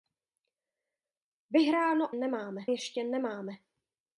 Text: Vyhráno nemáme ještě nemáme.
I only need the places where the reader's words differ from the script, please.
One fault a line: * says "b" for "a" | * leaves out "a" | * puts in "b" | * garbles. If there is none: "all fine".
all fine